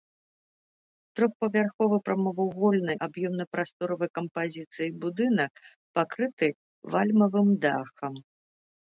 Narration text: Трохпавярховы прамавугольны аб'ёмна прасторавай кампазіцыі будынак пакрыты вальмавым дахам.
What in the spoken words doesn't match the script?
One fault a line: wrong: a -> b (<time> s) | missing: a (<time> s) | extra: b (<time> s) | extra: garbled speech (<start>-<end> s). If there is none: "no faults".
no faults